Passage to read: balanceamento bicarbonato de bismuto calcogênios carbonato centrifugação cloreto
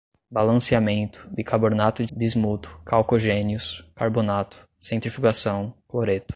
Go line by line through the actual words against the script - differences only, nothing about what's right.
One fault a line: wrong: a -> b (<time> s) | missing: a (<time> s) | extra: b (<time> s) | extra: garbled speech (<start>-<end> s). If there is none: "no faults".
no faults